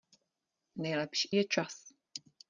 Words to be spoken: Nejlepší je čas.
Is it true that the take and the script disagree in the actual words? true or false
false